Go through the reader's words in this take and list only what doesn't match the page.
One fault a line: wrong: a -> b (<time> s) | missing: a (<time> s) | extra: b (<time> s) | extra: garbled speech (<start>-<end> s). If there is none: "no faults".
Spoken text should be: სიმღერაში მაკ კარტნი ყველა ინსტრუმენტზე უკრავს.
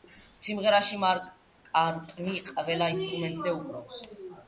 no faults